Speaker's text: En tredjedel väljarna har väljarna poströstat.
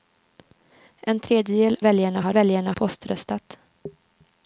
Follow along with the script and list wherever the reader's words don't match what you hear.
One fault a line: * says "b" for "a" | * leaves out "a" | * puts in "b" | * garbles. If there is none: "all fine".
all fine